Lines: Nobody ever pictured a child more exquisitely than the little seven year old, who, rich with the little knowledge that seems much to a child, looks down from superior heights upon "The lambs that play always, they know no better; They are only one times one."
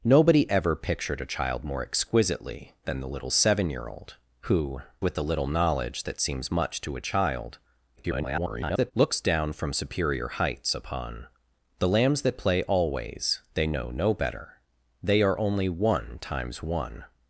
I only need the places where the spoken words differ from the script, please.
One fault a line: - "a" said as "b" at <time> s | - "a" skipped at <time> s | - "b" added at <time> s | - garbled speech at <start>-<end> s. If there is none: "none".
- "rich" skipped at 4.8 s
- garbled speech at 8.0-8.9 s